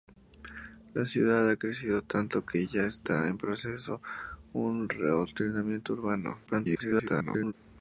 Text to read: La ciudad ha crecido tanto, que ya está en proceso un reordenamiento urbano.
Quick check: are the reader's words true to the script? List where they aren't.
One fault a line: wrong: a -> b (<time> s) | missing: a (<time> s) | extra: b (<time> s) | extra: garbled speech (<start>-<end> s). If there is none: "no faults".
extra: garbled speech (6.5-7.5 s)